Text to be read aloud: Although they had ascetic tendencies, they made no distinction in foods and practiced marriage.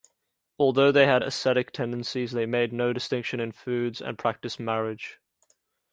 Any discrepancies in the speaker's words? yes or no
no